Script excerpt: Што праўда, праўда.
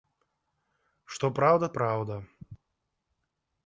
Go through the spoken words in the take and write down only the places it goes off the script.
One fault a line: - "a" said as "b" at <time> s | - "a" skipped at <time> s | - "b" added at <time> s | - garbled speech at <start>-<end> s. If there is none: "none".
none